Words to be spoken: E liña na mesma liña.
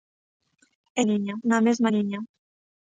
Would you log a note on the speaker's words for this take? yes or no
no